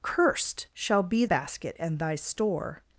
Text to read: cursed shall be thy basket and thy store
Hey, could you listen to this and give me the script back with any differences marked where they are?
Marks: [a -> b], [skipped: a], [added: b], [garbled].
cursed shall be [skipped: thy] basket and thy store